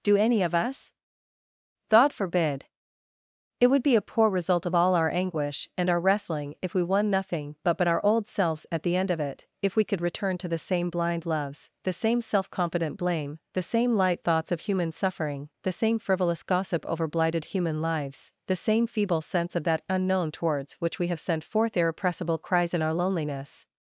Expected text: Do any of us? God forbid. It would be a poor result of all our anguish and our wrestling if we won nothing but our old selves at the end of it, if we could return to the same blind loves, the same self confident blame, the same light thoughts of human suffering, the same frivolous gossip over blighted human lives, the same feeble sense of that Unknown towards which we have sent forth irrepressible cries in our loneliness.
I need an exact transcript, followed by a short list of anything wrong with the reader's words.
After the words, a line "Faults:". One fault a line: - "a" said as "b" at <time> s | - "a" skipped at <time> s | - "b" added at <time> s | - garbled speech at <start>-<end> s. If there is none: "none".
Do any of us? God forbid. It would be a poor result of all our anguish and our wrestling if we won nothing but but our old selves at the end of it, if we could return to the same blind loves, the same self confident blame, the same light thoughts of human suffering, the same frivolous gossip over blighted human lives, the same feeble sense of that Unknown towards which we have sent forth irrepressible cries in our loneliness.
Faults:
- "but" added at 7.8 s